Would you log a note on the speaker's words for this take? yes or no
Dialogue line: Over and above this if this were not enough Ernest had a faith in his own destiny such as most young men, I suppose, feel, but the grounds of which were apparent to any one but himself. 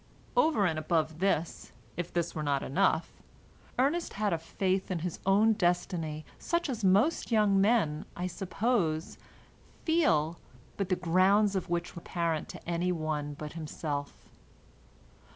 no